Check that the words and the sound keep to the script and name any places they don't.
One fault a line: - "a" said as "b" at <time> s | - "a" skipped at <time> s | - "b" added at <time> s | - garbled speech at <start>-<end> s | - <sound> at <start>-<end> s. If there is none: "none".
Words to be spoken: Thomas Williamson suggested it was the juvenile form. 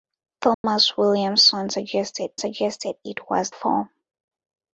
- dropout at 0.5-0.6 s
- "suggested" added at 2.4 s
- "the juvenile" skipped at 3.5 s